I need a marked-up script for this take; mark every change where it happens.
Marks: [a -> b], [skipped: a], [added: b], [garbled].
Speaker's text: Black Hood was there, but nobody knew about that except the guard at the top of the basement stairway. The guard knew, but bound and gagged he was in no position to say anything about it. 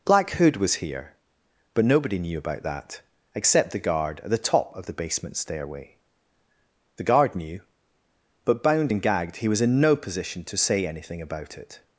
Black Hood was [there, -> here] but nobody knew about that except the guard at the top of the basement stairway. The guard knew, but bound and gagged he was in no position to say anything about it.